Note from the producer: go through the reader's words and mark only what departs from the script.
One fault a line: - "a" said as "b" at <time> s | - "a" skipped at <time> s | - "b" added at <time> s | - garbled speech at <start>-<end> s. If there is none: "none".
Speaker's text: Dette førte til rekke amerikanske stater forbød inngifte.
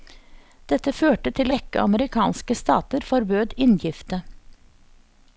none